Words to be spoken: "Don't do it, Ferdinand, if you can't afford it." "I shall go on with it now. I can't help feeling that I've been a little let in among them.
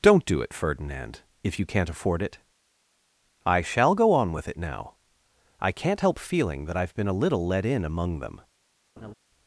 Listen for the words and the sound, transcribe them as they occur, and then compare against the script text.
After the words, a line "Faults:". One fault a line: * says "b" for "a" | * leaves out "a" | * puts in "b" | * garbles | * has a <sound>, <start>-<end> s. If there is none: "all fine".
"Don't do it, Ferdinand, if you can't afford it." "I shall go on with it now. I can't help feeling that I've been a little let in among them.
Faults:
* has a laugh, 9.0-9.1 s